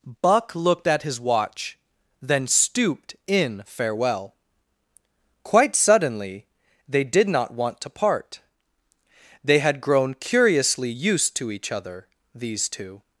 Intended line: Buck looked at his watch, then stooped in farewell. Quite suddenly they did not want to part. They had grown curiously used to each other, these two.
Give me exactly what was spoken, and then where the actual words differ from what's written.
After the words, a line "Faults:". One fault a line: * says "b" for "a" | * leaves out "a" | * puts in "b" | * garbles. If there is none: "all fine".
Buck looked at his watch, then stooped in farewell. Quite suddenly they did not want to part. They had grown curiously used to each other, these two.
Faults:
all fine